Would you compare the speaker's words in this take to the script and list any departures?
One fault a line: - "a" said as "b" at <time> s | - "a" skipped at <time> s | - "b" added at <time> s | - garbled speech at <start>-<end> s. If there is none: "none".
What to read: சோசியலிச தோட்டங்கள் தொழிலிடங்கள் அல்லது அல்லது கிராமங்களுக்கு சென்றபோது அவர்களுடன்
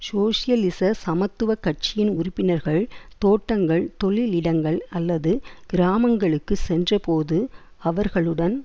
- "சமத்துவ கட்சியின் உறுப்பினர்கள்" added at 1.0 s
- "அல்லது" skipped at 5.3 s